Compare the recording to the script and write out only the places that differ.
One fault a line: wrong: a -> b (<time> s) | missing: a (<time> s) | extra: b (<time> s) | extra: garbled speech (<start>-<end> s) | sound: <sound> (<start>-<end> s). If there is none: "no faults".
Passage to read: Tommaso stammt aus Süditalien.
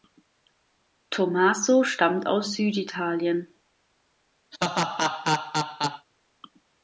sound: laugh (4.5-6.1 s)